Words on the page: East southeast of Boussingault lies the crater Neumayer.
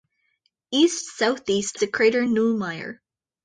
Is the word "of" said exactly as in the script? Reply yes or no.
no